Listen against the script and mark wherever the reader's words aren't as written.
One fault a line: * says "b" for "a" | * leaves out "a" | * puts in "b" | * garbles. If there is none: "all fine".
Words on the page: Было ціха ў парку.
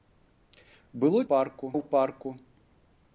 * says "парку" for "ціха"